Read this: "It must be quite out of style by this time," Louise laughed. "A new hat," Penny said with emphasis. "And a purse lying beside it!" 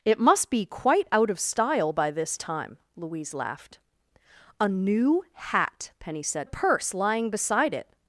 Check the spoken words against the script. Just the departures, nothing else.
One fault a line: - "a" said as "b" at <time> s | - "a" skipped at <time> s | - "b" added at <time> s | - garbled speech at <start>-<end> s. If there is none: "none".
- "with emphasis And" skipped at 6.5 s